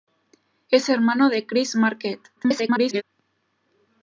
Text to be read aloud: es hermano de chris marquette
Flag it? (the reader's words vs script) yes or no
yes